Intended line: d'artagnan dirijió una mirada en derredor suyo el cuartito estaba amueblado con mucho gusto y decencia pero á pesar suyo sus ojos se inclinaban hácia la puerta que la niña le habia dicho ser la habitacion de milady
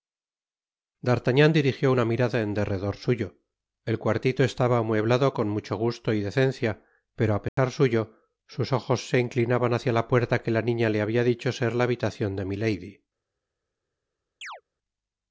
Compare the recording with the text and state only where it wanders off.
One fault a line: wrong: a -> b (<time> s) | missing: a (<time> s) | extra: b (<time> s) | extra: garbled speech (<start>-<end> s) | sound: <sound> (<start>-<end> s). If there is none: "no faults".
sound: dropout (7.5-7.6 s)
sound: chirp (14.4-14.6 s)